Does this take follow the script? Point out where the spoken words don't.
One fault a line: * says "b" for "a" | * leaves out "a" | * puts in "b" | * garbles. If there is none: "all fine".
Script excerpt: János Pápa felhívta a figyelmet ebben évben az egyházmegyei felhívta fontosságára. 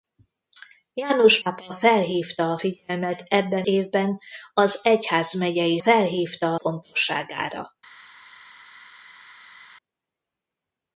all fine